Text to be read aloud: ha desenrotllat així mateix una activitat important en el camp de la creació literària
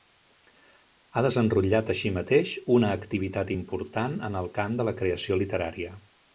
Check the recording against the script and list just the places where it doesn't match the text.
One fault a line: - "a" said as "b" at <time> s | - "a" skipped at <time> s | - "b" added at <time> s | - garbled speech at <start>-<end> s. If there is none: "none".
none